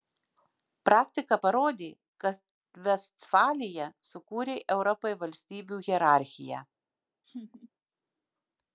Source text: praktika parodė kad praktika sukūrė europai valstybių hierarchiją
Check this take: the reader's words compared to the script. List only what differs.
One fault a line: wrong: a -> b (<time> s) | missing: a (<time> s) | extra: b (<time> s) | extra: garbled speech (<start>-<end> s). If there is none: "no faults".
wrong: praktika -> vestfalija (2.9 s)